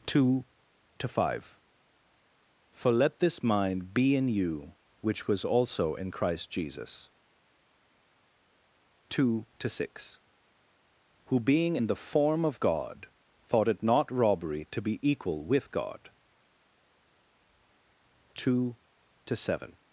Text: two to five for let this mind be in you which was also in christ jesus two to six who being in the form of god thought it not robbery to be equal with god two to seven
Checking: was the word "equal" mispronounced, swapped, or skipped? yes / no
no